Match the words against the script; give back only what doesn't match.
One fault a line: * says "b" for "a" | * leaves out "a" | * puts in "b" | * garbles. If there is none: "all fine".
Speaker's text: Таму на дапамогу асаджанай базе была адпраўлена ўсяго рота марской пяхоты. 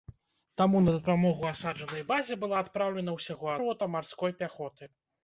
all fine